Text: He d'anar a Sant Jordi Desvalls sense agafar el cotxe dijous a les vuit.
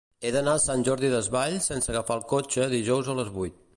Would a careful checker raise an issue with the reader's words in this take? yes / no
no